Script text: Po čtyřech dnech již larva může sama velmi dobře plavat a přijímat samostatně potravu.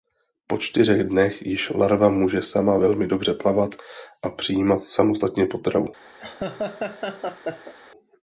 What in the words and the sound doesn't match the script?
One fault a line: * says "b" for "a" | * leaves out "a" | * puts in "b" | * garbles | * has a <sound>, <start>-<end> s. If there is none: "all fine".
* has a laugh, 6.2-7.7 s